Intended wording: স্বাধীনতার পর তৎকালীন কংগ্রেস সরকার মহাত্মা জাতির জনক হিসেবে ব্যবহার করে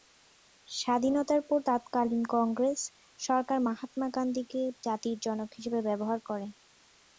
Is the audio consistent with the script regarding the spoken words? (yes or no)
no